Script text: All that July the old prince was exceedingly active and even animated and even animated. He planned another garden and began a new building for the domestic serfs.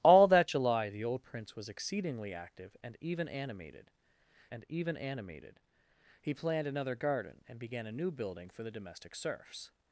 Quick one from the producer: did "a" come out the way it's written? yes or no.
yes